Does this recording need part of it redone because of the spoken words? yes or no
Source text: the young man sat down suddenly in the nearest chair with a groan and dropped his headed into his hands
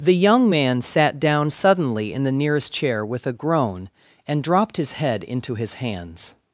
yes